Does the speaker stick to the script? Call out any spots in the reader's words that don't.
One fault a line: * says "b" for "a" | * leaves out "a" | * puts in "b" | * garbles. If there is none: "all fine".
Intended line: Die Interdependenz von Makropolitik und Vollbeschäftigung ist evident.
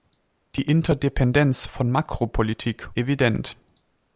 * leaves out "und Vollbeschäftigung ist"